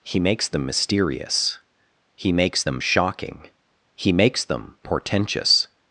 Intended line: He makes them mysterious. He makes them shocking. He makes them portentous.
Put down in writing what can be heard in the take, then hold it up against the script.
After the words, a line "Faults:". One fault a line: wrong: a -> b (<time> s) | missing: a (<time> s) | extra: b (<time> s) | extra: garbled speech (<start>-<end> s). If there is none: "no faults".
He makes them mysterious. He makes them shocking. He makes them portentous.
Faults:
no faults